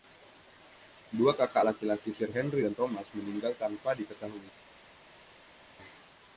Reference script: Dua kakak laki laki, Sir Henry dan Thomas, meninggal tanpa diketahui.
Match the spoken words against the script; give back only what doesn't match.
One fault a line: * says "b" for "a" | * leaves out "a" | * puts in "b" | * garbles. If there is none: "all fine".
all fine